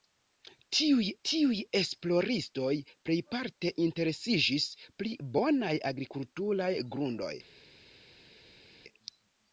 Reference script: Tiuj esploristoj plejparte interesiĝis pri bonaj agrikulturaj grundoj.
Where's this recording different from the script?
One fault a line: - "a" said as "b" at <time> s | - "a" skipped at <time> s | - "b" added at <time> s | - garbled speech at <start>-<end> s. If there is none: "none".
- "tiuj" added at 1.3 s